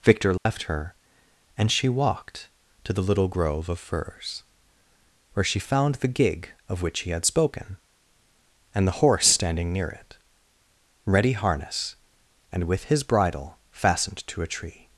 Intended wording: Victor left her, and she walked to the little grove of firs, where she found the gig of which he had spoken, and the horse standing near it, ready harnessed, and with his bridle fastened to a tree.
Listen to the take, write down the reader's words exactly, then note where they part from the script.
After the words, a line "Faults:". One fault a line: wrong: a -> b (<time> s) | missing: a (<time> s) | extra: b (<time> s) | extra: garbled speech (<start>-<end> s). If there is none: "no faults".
Victor left her, and she walked to the little grove of firs, where she found the gig of which he had spoken, and the horse standing near it, ready harness, and with his bridle fastened to a tree.
Faults:
wrong: harnessed -> harness (11.3 s)